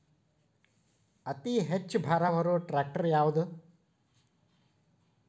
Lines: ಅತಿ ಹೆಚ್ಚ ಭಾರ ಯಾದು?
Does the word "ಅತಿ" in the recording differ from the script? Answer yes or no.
no